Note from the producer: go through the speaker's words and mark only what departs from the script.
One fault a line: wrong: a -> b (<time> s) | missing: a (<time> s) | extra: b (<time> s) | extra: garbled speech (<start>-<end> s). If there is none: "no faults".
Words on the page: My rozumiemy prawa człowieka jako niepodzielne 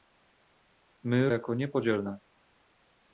missing: rozumiemy prawa człowieka (1.3 s)